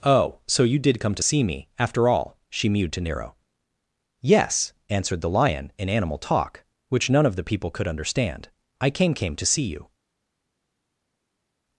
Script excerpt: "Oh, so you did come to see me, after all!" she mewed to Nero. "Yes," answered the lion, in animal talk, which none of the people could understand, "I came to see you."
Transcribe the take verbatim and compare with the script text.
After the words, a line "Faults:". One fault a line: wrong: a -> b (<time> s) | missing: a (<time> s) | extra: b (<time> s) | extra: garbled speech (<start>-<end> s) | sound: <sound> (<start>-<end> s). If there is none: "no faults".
"Oh, so you did come to see me, after all!" she mewed to Nero. "Yes," answered the lion, in animal talk, which none of the people could understand, "I came came to see you."
Faults:
extra: came (9.1 s)